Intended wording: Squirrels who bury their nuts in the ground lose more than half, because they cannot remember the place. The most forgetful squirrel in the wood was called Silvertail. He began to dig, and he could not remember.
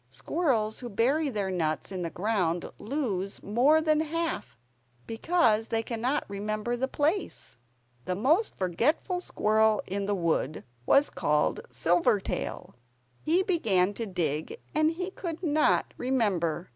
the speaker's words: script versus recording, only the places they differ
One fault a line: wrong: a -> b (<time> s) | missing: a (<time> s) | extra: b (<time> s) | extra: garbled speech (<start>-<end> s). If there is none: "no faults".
no faults